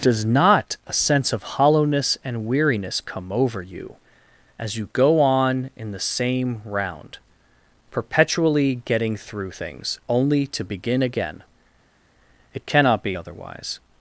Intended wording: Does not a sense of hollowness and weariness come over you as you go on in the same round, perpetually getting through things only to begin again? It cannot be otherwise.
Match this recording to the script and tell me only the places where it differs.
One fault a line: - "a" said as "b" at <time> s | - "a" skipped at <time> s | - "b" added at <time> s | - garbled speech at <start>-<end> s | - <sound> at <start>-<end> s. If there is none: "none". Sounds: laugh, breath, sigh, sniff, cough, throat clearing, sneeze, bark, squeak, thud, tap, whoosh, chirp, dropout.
none